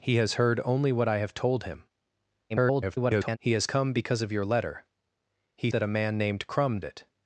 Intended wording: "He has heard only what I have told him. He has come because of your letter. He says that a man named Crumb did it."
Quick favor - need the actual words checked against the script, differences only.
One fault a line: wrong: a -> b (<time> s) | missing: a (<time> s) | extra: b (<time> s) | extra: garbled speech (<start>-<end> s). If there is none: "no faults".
extra: garbled speech (2.5-3.4 s)
missing: says (5.7 s)
missing: did (6.8 s)